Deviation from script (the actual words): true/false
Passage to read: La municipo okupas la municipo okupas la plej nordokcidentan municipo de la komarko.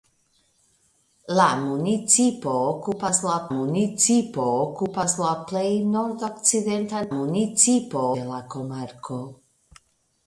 false